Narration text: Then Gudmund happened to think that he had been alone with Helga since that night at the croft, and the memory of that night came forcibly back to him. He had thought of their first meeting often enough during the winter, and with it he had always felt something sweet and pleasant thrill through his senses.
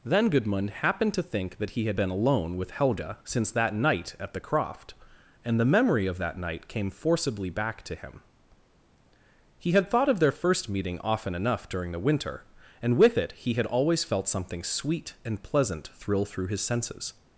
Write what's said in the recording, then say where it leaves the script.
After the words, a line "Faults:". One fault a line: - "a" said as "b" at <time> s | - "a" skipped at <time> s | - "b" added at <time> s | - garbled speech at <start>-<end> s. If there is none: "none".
Then Gudmund happened to think that he had been alone with Helga since that night at the croft, and the memory of that night came forcibly back to him. He had thought of their first meeting often enough during the winter, and with it he had always felt something sweet and pleasant thrill through his senses.
Faults:
none